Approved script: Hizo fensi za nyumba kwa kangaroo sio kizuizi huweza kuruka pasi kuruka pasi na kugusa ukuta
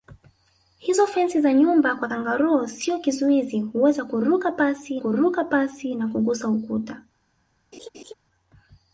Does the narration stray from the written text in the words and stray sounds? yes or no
yes